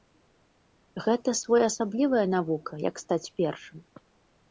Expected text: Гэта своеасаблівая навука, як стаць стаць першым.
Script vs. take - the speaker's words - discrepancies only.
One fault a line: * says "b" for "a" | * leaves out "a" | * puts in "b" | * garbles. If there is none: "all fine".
* leaves out "стаць"